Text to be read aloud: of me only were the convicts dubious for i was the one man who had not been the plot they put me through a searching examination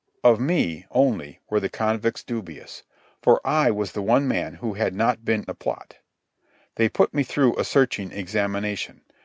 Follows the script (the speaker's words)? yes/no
yes